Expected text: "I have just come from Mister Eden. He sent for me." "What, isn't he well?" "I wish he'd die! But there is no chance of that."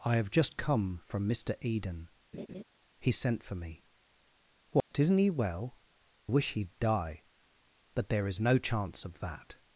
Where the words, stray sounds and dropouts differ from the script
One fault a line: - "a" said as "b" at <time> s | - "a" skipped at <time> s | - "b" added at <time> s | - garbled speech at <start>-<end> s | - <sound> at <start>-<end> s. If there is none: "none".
- laugh at 2.3-2.6 s
- dropout at 4.8-4.9 s
- "I" skipped at 5.8 s